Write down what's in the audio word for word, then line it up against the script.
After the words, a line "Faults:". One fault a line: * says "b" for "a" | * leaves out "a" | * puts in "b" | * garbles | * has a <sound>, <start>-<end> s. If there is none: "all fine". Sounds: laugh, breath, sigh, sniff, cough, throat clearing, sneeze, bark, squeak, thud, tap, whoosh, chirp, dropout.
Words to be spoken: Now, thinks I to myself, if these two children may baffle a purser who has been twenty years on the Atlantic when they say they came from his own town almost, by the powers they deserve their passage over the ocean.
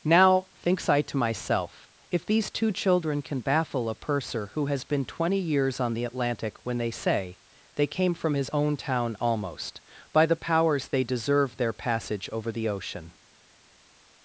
Now, thinks I to myself, if these two children can baffle a purser who has been twenty years on the Atlantic when they say they came from his own town almost, by the powers they deserve their passage over the ocean.
Faults:
* says "can" for "may"